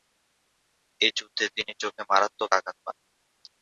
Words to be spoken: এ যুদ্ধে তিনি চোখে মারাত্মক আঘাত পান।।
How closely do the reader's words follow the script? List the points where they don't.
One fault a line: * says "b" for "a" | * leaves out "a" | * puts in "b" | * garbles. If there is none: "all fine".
all fine